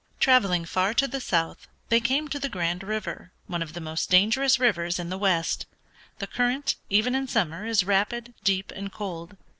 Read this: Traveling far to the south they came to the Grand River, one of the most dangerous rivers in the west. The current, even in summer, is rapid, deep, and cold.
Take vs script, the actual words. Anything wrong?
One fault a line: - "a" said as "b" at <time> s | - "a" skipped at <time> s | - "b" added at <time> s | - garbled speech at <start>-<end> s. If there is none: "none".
none